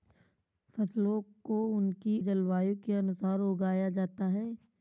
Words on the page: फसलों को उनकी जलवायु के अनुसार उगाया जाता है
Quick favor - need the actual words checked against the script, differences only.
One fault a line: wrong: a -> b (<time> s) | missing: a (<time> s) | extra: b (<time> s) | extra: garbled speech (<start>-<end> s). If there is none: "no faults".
no faults